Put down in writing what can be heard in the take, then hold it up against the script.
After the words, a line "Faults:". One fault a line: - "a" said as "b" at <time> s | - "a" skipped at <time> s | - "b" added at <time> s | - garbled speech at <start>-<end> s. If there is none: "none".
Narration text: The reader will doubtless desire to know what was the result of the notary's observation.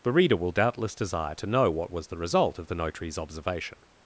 The reader will doubtless desire to know what was the result of the notary's observation.
Faults:
none